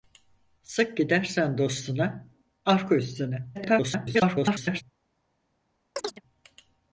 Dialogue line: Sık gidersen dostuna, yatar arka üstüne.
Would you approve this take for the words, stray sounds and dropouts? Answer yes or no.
no